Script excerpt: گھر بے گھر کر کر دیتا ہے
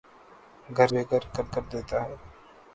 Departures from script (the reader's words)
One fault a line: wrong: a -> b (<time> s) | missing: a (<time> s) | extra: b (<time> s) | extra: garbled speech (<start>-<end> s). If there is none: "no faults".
no faults